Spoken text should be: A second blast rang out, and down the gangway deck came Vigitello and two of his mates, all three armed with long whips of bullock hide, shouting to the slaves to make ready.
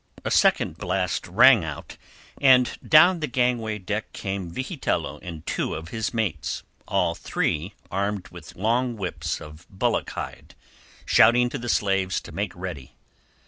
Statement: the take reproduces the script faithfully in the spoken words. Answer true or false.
true